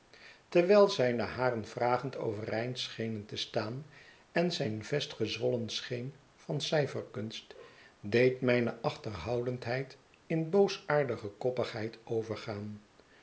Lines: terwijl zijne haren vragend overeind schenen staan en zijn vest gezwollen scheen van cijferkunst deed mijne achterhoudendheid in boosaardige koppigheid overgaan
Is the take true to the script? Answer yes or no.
no